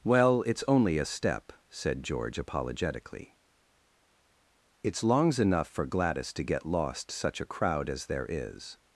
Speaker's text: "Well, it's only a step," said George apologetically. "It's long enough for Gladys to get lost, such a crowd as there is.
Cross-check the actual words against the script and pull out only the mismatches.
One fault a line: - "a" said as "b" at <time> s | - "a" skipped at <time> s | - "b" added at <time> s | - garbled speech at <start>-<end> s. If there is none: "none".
- "long" said as "longs" at 5.0 s